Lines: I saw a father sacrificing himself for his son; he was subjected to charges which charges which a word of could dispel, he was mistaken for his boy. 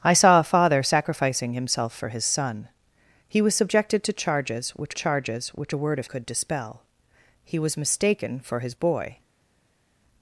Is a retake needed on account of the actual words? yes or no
no